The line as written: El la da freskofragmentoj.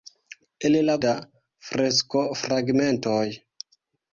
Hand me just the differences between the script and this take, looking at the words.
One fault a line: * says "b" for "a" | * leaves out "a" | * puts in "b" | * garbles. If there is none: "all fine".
all fine